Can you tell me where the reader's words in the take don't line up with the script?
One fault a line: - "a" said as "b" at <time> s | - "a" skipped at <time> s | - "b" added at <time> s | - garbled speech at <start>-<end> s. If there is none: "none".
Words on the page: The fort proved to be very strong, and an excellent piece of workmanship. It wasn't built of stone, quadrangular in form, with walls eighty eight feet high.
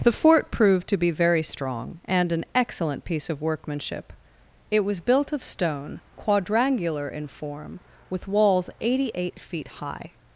- "wasn't" said as "was" at 4.8 s